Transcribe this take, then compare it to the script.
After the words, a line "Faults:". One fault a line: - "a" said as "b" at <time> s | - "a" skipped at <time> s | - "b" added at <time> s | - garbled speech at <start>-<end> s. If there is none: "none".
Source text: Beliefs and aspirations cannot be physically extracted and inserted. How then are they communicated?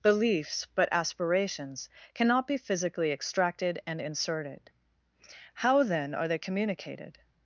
Beliefs but aspirations cannot be physically extracted and inserted. How then are they communicated?
Faults:
- "and" said as "but" at 0.7 s